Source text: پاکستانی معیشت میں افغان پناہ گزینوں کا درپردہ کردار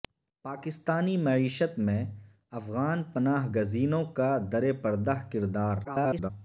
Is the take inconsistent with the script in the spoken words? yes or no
yes